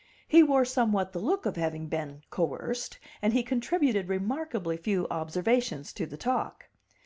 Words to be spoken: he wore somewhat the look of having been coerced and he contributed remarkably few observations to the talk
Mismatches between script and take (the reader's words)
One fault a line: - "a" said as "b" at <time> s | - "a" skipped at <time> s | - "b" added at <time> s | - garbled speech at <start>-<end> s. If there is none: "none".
none